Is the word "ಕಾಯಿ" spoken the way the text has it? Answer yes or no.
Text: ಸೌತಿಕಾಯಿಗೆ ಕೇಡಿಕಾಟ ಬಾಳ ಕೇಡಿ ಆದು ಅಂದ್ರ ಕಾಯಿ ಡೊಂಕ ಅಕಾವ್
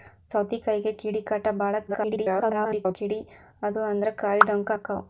yes